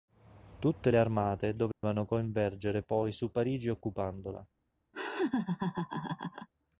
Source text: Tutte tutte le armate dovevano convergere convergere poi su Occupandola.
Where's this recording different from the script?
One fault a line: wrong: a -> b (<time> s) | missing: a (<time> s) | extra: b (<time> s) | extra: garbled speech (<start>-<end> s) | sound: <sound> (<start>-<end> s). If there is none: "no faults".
missing: tutte (0.9 s)
sound: dropout (1.7-1.8 s)
missing: convergere (2.8 s)
extra: Parigi (3.3 s)
sound: laugh (4.9-6.5 s)